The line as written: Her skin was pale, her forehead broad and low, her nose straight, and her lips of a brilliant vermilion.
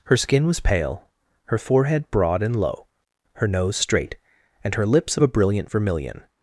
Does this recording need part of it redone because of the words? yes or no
no